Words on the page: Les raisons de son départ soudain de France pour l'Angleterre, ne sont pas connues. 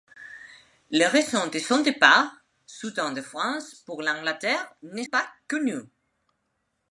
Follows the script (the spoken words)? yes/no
no